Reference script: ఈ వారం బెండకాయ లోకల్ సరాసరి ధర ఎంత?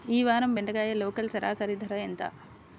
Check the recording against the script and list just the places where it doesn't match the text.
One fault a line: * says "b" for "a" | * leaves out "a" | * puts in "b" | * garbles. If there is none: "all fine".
all fine